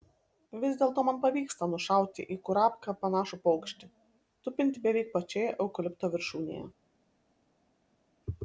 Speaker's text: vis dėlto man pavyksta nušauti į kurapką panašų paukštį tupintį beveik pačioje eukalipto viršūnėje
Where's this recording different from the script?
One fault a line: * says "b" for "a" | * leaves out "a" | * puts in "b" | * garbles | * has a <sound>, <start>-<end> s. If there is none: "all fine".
all fine